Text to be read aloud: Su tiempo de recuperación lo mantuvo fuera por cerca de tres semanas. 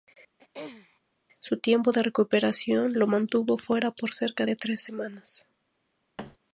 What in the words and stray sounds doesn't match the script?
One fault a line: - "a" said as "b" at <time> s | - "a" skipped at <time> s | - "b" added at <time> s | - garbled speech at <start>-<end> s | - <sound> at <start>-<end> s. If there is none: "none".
- throat clearing at 0.4-1.0 s
- thud at 6.2-6.4 s